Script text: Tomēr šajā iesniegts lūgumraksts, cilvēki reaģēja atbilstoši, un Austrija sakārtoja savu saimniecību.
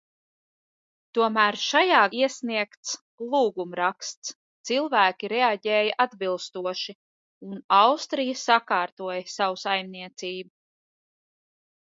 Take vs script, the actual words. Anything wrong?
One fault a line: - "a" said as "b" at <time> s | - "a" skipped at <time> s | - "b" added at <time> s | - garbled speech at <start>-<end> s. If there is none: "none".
none